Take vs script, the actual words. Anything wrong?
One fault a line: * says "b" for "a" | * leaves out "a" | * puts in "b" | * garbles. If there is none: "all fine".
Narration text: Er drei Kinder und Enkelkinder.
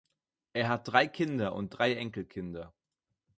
* puts in "hat"
* puts in "drei"